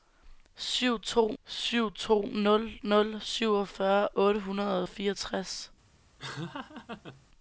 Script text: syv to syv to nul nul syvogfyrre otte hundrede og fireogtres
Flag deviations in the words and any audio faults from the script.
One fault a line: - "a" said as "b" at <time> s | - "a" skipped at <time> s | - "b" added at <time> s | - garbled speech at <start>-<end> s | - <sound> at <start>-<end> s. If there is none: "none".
- laugh at 6.2-7.3 s